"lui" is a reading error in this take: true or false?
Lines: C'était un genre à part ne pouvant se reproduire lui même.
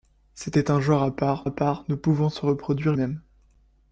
true